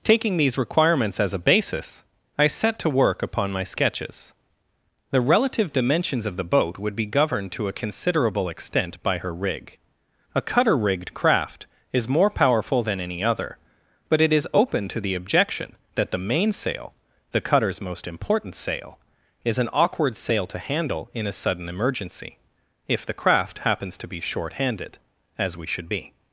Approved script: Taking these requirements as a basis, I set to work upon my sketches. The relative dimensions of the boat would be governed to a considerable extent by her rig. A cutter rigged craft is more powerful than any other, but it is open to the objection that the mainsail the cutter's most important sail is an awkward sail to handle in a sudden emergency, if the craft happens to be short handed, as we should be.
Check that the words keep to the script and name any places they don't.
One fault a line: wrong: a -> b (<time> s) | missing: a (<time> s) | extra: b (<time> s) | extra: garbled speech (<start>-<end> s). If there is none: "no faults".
no faults